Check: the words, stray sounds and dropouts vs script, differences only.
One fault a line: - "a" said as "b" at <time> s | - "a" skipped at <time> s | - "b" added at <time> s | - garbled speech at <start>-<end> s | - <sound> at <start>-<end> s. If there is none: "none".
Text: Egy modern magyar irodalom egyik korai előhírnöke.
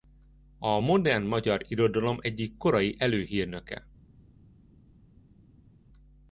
- "Egy" said as "A" at 0.6 s